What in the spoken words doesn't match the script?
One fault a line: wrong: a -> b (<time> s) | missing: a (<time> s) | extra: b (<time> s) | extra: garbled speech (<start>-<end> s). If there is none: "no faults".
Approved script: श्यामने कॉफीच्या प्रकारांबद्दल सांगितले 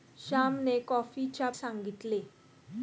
missing: प्रकारांबद्दल (1.5 s)